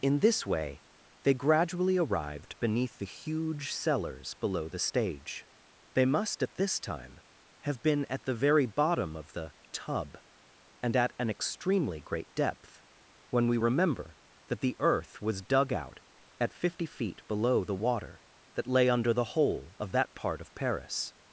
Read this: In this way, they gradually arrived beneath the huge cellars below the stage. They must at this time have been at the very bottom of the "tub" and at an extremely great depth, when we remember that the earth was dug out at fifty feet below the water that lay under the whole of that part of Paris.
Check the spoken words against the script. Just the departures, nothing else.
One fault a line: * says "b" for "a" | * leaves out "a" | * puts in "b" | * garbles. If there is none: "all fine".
all fine